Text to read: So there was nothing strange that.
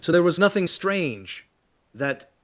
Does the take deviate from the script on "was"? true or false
false